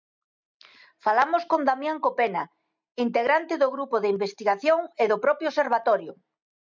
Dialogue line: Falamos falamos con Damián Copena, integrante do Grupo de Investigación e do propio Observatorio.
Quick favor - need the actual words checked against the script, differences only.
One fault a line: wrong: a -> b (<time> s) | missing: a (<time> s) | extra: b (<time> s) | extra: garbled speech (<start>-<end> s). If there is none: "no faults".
missing: falamos (1.4 s)